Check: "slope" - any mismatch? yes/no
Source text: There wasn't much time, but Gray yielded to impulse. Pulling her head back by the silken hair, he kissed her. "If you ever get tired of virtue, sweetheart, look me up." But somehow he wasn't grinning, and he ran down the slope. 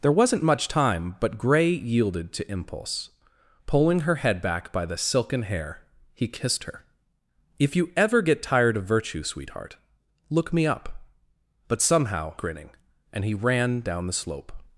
no